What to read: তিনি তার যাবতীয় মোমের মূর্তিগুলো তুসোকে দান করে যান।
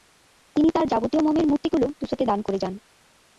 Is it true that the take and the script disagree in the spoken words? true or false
false